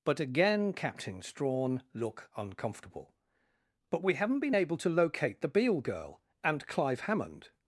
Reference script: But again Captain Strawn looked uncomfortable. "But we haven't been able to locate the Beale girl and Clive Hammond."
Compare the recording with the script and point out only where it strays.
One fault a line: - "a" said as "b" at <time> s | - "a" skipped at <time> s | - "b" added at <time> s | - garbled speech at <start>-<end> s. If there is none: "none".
- "looked" said as "look" at 1.9 s